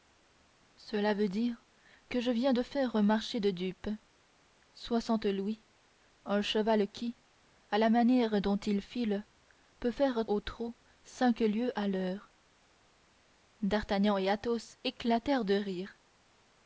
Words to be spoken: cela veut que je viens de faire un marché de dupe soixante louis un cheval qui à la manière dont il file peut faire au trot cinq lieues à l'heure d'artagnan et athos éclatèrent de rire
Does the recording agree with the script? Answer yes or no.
no